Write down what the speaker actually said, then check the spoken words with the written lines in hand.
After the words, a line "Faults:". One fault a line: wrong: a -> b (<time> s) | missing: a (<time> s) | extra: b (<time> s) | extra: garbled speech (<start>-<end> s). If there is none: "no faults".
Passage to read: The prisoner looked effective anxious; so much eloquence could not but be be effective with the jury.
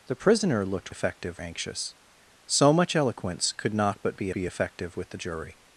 The prisoner looked effective anxious; so much eloquence could not but be be effective with the jury.
Faults:
no faults